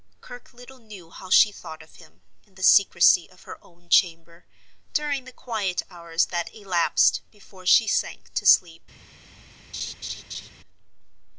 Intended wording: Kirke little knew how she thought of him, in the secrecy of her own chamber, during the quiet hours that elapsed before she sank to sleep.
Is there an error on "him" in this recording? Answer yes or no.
no